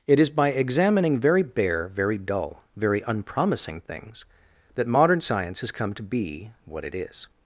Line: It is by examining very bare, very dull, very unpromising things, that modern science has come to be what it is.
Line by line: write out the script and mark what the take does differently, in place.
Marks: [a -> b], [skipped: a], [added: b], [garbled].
It is by examining very bare, very dull, very unpromising things, that modern science has come to be what it is.